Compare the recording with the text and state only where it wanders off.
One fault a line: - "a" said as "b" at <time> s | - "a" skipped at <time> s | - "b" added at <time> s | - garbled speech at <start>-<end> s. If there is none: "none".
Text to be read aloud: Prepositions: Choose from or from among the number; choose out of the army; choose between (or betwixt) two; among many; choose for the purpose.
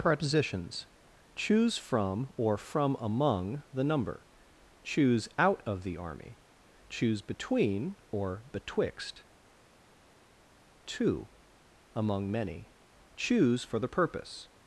none